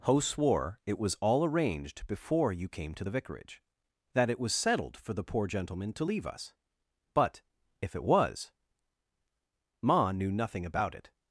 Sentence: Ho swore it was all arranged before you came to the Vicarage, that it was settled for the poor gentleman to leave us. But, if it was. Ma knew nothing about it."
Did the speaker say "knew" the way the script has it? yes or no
yes